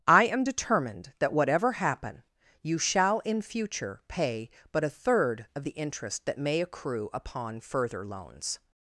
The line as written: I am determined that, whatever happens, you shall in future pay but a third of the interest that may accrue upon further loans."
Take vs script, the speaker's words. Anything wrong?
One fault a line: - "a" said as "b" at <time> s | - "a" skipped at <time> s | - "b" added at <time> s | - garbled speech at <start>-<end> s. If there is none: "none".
- "happens" said as "happen" at 1.7 s